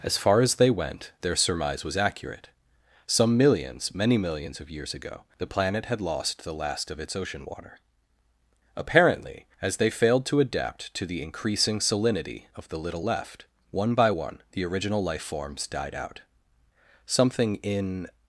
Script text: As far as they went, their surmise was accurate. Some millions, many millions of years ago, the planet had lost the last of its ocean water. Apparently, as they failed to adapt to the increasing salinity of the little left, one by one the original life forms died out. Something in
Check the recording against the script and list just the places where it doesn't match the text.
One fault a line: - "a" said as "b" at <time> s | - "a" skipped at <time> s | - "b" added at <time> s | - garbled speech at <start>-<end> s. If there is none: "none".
none